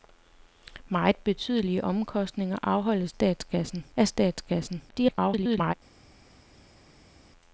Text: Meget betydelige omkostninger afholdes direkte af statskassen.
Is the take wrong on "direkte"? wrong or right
wrong